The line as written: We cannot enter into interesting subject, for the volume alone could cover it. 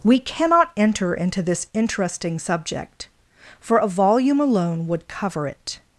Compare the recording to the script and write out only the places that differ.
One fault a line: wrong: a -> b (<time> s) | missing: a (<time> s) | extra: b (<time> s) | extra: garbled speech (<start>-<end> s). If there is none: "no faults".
extra: this (1.4 s)
wrong: the -> a (3.8 s)
wrong: could -> would (4.9 s)